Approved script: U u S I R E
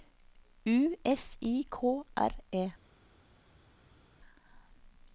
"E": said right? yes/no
yes